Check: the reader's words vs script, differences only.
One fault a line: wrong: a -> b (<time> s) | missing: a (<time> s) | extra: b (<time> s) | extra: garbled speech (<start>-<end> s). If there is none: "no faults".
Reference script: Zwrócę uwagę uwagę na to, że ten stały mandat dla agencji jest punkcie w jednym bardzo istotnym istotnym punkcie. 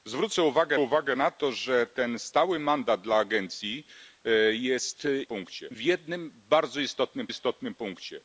no faults